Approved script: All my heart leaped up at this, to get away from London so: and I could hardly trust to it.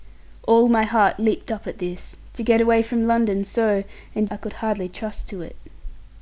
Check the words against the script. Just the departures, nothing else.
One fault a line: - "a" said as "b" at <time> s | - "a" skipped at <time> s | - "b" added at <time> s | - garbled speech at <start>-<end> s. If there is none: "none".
none